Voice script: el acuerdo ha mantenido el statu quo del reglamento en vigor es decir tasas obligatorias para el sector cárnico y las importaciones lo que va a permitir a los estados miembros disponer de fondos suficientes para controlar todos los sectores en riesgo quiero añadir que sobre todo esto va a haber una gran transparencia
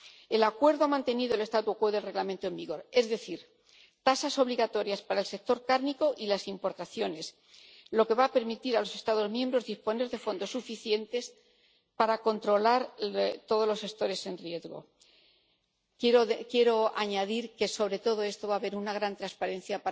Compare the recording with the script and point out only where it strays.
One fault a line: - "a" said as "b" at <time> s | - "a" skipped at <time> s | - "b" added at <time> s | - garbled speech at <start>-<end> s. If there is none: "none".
none